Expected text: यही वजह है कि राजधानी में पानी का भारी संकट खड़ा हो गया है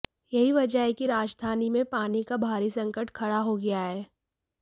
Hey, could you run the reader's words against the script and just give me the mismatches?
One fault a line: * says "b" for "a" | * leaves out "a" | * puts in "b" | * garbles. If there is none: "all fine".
all fine